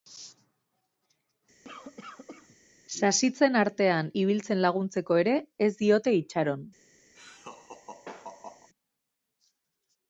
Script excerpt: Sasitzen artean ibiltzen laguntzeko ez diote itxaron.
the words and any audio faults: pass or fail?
fail